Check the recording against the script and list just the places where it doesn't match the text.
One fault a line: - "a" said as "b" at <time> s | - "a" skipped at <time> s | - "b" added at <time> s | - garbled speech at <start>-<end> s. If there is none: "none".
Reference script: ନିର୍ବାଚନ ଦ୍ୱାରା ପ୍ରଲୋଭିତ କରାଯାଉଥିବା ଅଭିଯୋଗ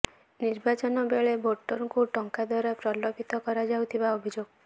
- "ବେଳେ ଭୋଟରଙ୍କୁ ଟଙ୍କା" added at 1.1 s